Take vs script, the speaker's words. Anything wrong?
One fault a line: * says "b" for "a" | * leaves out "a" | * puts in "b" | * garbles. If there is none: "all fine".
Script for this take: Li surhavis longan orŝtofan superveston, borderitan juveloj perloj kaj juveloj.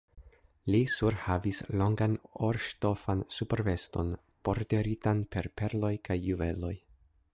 * says "per" for "juveloj"